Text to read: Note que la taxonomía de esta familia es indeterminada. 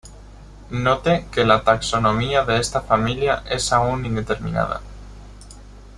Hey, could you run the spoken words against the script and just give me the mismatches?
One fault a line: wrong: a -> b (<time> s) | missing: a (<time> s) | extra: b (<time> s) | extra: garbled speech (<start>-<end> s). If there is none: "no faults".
extra: aún (3.7 s)